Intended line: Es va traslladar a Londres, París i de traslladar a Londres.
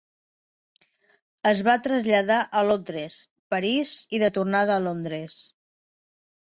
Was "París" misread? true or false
false